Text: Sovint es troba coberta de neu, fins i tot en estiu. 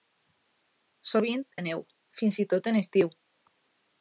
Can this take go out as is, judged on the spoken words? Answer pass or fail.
fail